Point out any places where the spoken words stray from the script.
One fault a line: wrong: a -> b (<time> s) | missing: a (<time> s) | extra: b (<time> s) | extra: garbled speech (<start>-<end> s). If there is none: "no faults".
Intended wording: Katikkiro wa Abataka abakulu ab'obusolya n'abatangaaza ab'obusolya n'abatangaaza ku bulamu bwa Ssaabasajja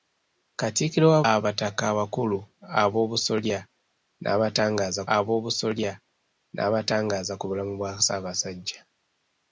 no faults